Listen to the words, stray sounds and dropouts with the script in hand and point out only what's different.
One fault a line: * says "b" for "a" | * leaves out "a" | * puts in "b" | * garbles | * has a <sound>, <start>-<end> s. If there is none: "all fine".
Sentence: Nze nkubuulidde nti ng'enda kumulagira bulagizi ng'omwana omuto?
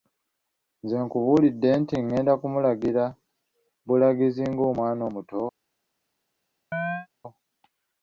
* has a chirp, 6.7-7.1 s